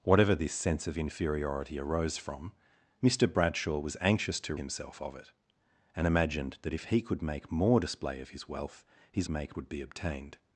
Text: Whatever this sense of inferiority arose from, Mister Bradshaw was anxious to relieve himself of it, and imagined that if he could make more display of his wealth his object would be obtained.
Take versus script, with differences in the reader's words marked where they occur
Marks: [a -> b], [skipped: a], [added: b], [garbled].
Whatever this sense of inferiority arose from, Mister Bradshaw was anxious to [skipped: relieve] himself of it, and imagined that if he could make more display of his wealth his [object -> make] would be obtained.